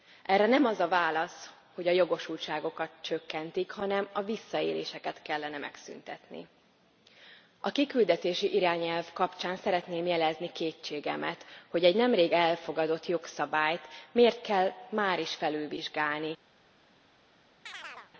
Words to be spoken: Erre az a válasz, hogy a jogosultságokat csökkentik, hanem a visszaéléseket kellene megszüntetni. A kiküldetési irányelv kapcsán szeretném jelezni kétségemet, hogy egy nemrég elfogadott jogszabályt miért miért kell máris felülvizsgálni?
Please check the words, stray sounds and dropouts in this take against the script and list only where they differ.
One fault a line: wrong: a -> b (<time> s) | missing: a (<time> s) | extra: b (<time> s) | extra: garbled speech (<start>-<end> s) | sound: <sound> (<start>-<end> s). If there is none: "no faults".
extra: nem (0.5 s)
missing: miért (14.4 s)
sound: chirp (17.7-18.1 s)